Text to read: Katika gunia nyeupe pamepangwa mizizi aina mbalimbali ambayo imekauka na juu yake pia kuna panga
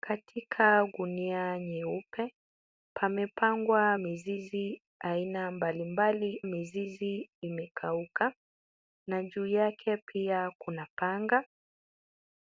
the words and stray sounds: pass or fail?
fail